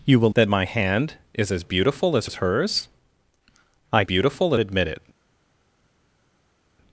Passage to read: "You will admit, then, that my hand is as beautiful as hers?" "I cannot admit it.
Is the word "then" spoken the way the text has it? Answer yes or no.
no